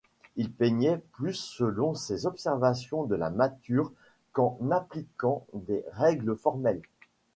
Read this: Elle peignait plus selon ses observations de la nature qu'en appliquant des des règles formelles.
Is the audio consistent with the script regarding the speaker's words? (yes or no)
no